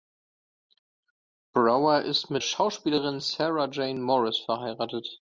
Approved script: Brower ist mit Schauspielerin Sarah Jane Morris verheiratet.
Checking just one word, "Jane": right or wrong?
right